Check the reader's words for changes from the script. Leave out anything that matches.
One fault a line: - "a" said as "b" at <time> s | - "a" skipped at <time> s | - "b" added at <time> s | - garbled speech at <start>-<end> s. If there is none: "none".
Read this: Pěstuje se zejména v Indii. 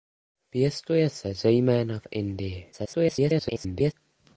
- garbled speech at 2.7-3.9 s